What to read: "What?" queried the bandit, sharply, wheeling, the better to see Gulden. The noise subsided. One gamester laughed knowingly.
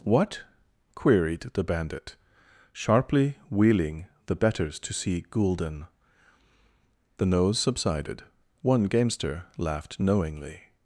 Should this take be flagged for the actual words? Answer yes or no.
yes